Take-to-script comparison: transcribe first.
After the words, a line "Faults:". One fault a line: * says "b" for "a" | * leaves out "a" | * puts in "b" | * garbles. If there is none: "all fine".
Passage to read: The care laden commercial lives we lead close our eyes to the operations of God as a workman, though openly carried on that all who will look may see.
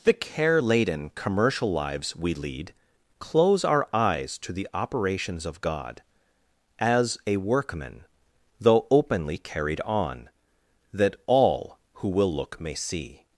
The care laden commercial lives we lead close our eyes to the operations of God as a workman, though openly carried on that all who will look may see.
Faults:
all fine